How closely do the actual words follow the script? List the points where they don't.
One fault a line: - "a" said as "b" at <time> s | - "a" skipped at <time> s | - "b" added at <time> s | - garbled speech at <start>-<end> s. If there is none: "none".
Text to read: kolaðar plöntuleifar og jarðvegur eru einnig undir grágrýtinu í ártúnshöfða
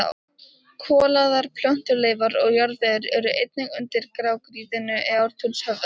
none